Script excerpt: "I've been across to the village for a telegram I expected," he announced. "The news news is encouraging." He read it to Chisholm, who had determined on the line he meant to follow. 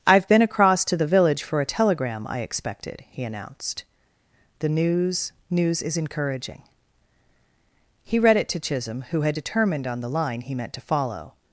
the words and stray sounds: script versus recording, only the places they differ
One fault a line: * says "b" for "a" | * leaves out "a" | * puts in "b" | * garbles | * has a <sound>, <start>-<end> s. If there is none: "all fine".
all fine